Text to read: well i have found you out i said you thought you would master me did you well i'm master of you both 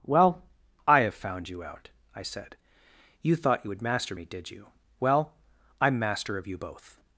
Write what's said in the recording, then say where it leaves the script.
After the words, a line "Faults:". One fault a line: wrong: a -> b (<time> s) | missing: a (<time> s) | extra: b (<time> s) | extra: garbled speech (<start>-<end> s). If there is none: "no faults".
well i have found you out i said you thought you would master me did you well i'm master of you both
Faults:
no faults